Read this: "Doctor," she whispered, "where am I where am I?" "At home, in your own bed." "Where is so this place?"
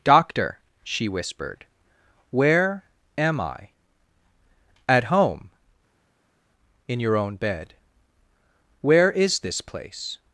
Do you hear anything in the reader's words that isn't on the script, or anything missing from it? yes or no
yes